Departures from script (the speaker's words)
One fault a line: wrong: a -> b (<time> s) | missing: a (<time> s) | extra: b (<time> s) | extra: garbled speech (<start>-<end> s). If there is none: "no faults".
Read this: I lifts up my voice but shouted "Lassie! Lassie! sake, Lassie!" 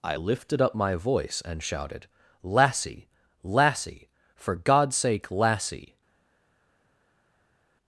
wrong: lifts -> lifted (0.1 s)
wrong: but -> and (1.4 s)
extra: for God's (4.3 s)